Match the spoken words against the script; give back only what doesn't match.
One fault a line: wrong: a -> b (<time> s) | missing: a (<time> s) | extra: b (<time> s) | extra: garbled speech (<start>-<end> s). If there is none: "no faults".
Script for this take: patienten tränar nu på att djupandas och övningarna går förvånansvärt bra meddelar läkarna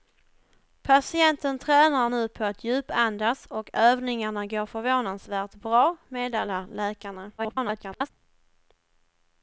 extra: garbled speech (7.4-8.1 s)